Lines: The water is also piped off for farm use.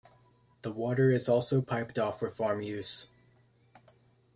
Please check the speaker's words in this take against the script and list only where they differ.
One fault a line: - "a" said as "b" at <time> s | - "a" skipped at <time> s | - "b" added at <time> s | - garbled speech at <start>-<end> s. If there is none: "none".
none